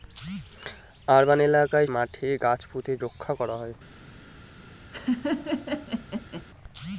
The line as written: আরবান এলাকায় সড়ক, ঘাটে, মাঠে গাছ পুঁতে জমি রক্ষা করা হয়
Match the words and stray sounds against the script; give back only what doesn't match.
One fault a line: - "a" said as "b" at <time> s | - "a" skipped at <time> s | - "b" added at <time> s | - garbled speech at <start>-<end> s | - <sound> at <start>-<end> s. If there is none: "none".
- "সড়ক ঘাটে" skipped at 1.9 s
- "জমি" skipped at 2.9 s
- laugh at 4.9-6.4 s